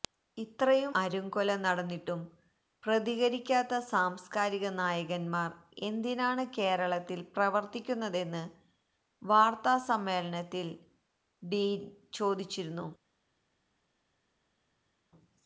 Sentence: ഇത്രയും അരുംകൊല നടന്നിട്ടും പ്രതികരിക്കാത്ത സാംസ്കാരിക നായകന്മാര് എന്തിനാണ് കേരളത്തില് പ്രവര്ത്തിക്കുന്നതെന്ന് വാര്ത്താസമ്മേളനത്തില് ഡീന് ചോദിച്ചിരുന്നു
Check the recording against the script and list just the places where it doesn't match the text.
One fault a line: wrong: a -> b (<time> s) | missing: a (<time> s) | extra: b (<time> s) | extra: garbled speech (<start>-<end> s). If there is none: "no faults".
no faults